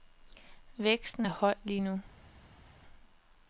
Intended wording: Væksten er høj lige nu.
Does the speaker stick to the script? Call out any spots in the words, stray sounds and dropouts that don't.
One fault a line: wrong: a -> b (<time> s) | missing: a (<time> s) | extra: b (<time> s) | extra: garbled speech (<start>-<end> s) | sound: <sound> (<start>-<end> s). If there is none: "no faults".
no faults